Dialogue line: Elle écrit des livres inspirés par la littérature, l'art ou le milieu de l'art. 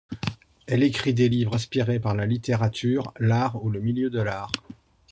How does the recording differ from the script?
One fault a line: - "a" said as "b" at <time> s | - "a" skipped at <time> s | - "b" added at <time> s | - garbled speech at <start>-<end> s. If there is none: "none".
none